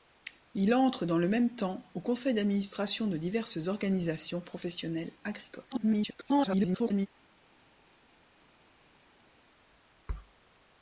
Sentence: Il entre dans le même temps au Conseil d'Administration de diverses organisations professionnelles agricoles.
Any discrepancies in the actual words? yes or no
yes